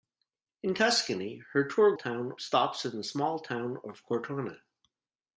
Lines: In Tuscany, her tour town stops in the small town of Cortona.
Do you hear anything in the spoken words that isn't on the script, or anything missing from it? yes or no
no